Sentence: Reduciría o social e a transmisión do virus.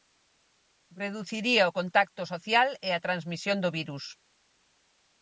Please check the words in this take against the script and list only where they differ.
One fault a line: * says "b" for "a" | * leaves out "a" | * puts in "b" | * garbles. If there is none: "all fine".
* puts in "contacto"